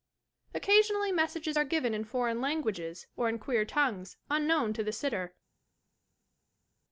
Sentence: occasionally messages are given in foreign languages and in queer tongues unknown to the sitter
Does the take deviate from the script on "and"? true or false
true